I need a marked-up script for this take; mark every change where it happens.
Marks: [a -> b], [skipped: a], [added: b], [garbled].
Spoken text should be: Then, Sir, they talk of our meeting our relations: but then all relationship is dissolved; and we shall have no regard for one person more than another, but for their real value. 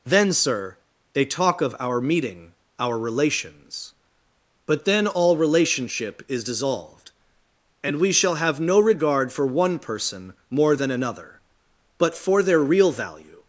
Then, Sir, they talk of our meeting our relations: but then all relationship is dissolved; and we shall have no regard for one person more than another, but for their real value.